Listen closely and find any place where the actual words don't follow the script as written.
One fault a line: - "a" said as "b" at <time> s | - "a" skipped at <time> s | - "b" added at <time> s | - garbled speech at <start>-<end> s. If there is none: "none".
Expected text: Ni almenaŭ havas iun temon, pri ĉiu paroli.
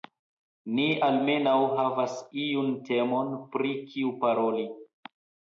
- "ĉiu" said as "kiu" at 3.9 s